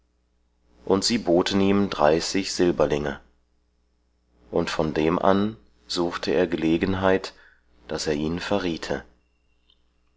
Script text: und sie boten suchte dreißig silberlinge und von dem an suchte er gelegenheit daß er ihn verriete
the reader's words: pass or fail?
fail